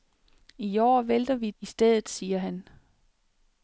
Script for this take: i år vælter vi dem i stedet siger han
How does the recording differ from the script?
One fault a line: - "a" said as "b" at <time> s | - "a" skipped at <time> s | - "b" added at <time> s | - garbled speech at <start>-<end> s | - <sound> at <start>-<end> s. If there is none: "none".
- "dem" skipped at 1.5 s